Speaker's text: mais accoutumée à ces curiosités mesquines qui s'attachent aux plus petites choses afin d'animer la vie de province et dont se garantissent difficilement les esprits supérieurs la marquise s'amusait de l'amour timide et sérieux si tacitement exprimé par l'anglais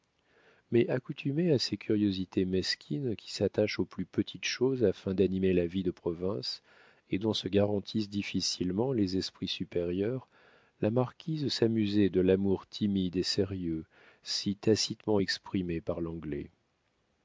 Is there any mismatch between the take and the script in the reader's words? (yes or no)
no